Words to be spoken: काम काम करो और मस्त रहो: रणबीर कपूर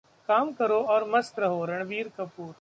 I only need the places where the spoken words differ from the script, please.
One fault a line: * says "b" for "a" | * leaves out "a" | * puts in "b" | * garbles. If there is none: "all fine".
* leaves out "काम"